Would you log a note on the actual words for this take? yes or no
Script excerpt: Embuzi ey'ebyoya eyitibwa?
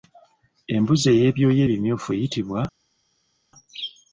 yes